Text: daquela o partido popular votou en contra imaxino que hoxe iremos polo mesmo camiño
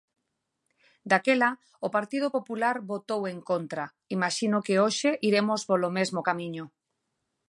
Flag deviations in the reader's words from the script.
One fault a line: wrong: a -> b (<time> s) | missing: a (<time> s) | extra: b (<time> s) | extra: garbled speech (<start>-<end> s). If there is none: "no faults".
no faults